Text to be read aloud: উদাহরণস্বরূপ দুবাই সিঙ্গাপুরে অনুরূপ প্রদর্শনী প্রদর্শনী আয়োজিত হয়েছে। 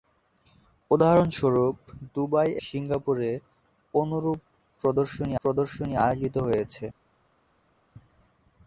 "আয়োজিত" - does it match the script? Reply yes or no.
yes